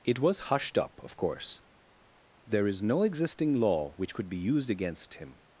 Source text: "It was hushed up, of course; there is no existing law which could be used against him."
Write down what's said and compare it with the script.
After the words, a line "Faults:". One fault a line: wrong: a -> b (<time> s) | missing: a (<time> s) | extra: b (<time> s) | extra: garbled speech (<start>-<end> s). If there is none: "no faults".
"It was hushed up, of course; there is no existing law which could be used against him."
Faults:
no faults